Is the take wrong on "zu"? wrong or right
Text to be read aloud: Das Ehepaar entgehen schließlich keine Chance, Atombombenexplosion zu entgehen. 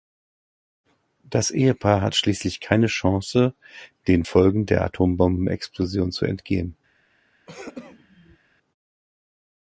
right